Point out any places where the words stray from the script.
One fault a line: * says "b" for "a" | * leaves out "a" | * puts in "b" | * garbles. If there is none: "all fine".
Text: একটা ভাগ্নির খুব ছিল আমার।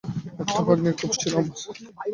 all fine